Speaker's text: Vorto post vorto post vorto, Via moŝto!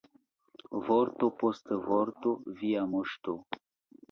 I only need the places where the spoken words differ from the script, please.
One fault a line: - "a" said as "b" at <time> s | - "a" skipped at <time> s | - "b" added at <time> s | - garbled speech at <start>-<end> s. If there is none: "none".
- "post vorto" skipped at 2.3 s